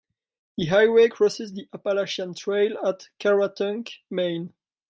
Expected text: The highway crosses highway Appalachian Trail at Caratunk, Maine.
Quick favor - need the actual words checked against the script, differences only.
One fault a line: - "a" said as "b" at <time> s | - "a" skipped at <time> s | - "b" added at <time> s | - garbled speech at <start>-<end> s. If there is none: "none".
- "highway" said as "the" at 1.5 s